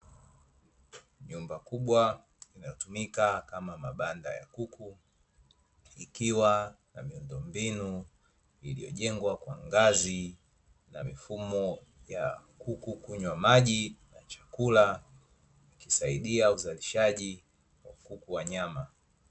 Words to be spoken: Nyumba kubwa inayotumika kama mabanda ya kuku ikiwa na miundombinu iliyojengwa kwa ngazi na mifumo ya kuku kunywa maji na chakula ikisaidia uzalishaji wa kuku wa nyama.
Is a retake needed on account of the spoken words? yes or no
no